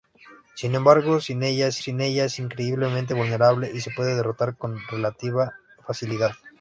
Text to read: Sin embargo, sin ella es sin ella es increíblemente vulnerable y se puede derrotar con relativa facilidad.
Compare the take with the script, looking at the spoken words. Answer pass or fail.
pass